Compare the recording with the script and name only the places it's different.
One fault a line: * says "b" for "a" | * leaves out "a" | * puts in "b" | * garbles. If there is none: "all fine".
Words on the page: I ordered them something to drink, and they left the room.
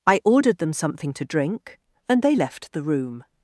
all fine